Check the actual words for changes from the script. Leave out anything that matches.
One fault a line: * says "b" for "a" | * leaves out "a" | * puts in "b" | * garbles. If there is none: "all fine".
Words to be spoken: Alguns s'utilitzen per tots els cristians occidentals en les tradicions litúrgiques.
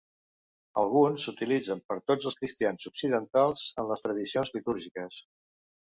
all fine